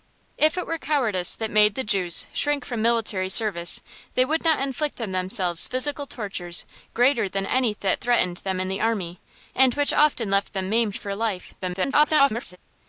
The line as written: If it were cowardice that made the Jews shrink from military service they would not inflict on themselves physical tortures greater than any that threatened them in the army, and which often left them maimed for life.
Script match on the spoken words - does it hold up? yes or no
no